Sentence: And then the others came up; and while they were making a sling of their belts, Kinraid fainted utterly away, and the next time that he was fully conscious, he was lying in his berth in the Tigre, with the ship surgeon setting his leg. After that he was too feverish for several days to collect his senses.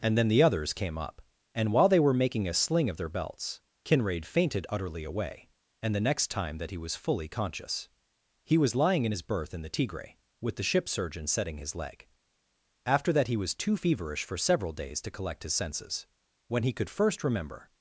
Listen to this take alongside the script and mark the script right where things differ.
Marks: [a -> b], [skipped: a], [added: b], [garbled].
And then the others came up; and while they were making a sling of their belts, Kinraid fainted utterly away, and the next time that he was fully conscious, he was lying in his berth in the Tigre, with the ship surgeon setting his leg. After that he was too feverish for several days to collect his senses. [added: When he could first remember]